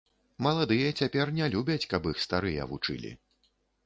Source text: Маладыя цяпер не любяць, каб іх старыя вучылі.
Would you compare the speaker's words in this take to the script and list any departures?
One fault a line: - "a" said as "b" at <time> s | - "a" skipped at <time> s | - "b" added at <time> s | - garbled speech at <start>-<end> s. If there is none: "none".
none